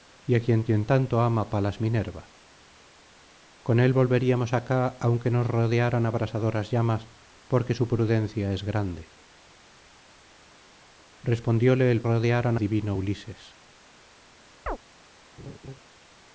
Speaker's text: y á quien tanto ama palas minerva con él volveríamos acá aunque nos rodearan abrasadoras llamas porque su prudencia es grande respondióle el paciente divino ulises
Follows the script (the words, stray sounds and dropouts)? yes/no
no